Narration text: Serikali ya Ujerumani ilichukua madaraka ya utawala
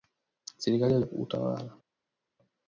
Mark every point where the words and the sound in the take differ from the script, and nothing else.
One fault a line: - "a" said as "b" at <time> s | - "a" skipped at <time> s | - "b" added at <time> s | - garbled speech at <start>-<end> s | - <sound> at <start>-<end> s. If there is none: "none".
- "Ujerumani ilichukua madaraka" skipped at 1.0 s